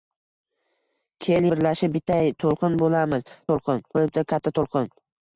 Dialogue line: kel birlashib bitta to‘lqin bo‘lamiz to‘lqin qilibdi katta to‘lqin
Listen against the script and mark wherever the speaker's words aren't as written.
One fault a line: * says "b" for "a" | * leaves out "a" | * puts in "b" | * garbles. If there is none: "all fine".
all fine